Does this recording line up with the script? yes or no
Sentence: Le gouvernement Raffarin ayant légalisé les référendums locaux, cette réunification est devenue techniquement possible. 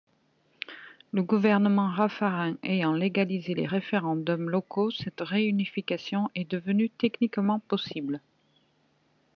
yes